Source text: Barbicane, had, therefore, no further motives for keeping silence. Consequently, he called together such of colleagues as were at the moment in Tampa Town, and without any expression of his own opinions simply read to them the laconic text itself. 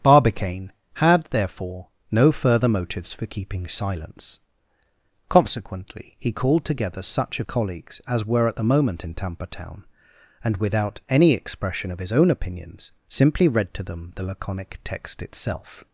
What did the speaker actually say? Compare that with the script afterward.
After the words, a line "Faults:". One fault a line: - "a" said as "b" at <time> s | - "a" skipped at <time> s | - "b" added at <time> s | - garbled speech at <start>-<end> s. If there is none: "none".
Barbicane, had, therefore, no further motives for keeping silence. Consequently, he called together such of colleagues as were at the moment in Tampa Town, and without any expression of his own opinions simply read to them the laconic text itself.
Faults:
none